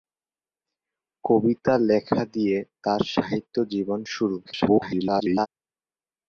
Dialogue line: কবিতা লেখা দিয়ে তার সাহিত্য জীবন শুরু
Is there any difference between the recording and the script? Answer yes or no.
yes